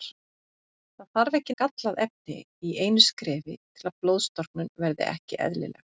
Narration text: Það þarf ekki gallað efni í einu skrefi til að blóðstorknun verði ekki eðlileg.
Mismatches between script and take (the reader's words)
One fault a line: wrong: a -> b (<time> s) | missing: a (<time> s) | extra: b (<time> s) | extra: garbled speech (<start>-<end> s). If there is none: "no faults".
no faults